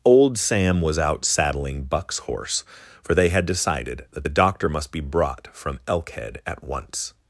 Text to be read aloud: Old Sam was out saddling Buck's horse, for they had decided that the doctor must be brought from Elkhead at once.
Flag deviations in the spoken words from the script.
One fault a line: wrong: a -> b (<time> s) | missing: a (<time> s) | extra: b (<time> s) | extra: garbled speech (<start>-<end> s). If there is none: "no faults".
no faults